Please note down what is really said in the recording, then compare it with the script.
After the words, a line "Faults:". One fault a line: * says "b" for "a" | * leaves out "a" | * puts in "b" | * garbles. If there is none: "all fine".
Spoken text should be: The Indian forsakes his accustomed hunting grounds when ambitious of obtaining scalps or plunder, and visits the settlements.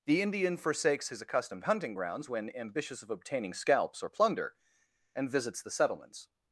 The Indian forsakes his accustomed hunting grounds when ambitious of obtaining scalps or plunder, and visits the settlements.
Faults:
all fine